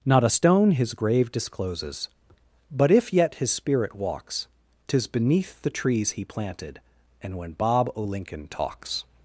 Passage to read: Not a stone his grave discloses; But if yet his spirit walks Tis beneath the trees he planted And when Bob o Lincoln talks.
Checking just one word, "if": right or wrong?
right